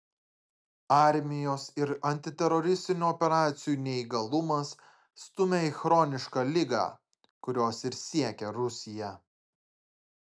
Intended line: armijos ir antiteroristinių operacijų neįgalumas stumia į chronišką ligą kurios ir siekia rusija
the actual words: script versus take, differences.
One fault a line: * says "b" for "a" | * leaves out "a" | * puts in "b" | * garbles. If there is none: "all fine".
all fine